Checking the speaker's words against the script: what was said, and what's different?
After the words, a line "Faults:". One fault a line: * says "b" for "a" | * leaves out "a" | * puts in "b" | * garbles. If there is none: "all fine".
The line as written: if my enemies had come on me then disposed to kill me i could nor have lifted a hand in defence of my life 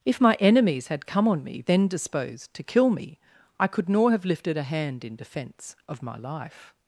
if my enemies had come on me then disposed to kill me i could nor have lifted a hand in defence of my life
Faults:
all fine